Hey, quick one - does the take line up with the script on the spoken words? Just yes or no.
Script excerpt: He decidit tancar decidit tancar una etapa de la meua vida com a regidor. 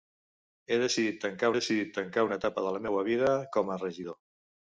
yes